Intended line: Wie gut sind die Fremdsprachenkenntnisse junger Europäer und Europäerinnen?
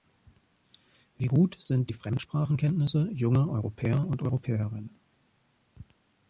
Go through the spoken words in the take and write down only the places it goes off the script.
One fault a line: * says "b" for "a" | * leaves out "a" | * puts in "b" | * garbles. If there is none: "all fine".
all fine